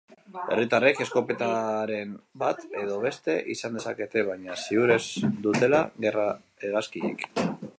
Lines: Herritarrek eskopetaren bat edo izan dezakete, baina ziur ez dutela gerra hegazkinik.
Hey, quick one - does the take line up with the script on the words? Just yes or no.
no